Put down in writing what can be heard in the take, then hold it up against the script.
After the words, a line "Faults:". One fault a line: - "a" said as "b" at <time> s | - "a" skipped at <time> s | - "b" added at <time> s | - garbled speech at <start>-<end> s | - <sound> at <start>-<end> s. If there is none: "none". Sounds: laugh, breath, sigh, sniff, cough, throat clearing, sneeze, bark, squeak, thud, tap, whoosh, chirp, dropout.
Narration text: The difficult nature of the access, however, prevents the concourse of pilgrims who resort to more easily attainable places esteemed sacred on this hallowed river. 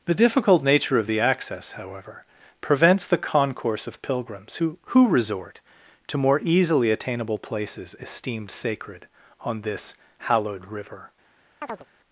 The difficult nature of the access, however, prevents the concourse of pilgrims who who resort to more easily attainable places esteemed sacred on this hallowed river.
Faults:
- "who" added at 4.9 s
- chirp at 11.6-11.9 s